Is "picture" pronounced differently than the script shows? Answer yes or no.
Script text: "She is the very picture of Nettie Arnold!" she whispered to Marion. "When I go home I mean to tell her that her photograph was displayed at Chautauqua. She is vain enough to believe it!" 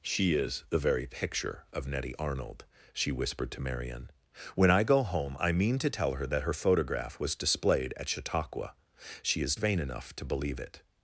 no